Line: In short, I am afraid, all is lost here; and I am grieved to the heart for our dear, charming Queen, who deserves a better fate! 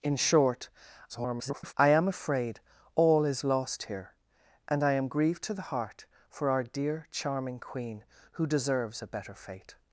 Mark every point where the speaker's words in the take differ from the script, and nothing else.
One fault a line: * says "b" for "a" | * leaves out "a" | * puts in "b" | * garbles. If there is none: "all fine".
* garbles